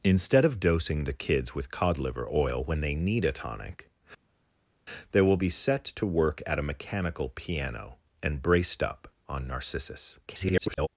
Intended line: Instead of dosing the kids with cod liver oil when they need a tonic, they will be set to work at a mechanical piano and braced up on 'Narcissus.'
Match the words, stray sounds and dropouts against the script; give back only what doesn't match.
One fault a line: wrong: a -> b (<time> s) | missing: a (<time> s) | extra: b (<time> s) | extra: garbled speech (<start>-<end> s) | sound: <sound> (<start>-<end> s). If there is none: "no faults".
extra: garbled speech (10.3-10.9 s)